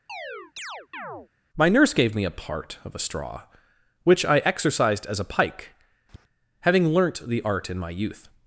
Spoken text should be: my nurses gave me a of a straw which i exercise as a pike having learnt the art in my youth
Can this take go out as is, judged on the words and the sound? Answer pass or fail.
fail